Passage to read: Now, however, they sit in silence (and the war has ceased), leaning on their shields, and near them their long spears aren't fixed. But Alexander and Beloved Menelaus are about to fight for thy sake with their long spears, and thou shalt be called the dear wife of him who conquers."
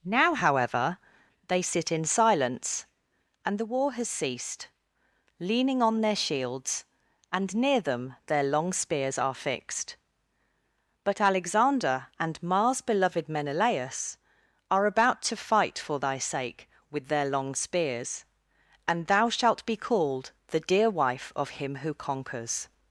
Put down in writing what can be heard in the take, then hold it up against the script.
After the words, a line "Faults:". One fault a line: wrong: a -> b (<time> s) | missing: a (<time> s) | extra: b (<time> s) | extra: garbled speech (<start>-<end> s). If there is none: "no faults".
Now, however, they sit in silence (and the war has ceased), leaning on their shields, and near them their long spears are fixed. But Alexander and Mars beloved Menelaus are about to fight for thy sake with their long spears, and thou shalt be called the dear wife of him who conquers."
Faults:
wrong: aren't -> are (9.2 s)
extra: Mars (12.4 s)